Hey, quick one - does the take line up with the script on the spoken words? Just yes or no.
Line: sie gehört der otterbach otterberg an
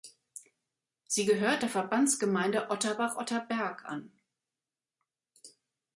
no